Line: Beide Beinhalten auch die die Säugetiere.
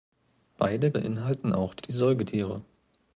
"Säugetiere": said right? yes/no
yes